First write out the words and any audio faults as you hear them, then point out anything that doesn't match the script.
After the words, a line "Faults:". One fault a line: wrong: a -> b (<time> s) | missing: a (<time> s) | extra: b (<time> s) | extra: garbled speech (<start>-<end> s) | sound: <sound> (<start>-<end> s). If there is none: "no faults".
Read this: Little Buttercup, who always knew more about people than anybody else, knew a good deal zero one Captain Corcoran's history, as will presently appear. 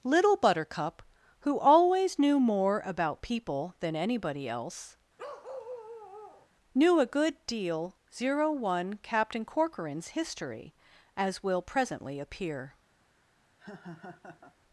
Little Buttercup, who always knew more about people than anybody else, knew a good deal zero one Captain Corcoran's history, as will presently appear.
Faults:
sound: bark (5.2-6.5 s)
sound: laugh (13.6-14.6 s)